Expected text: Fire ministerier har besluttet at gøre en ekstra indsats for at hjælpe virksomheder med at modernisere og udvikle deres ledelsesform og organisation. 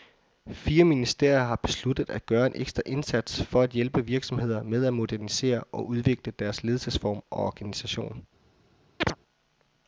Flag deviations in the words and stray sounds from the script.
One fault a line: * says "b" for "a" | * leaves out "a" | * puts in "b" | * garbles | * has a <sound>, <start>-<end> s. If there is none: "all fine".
* has a chirp, 9.0-9.2 s